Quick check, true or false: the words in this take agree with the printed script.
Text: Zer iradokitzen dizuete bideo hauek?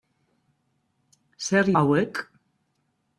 false